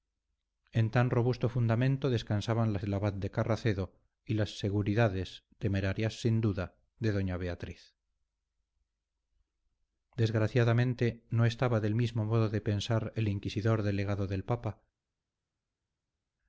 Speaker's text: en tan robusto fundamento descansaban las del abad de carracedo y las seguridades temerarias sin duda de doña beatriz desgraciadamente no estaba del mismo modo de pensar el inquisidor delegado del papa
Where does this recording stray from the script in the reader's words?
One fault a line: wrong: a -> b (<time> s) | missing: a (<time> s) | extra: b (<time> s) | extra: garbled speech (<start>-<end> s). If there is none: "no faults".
no faults